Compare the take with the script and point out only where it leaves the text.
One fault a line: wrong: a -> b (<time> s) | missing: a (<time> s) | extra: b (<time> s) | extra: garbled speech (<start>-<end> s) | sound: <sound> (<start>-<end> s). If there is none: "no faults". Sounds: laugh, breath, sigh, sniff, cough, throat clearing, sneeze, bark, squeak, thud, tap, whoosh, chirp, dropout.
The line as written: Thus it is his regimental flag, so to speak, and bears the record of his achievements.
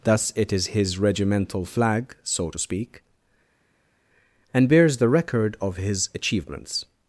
no faults